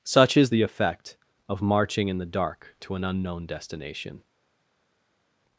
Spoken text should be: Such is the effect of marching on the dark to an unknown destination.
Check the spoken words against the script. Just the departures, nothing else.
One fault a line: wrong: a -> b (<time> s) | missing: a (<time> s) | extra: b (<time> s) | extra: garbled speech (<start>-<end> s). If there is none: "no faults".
wrong: on -> in (2.1 s)